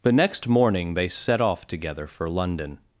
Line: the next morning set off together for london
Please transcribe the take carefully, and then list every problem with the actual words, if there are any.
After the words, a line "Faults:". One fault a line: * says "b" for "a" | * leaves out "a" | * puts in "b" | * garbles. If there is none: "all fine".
the next morning they set off together for london
Faults:
* puts in "they"